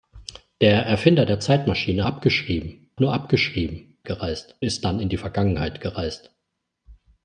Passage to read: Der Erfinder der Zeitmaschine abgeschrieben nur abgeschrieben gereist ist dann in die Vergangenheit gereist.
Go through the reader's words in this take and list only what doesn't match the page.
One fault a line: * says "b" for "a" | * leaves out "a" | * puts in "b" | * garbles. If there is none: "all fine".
all fine